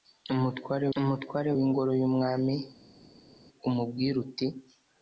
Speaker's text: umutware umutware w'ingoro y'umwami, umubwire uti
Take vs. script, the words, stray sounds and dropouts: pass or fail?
pass